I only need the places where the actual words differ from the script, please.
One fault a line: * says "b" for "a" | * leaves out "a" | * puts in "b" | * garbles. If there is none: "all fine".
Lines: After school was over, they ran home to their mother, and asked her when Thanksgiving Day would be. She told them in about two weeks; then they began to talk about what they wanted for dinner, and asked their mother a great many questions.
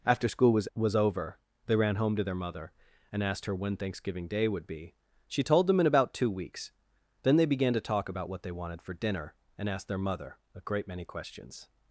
* puts in "was"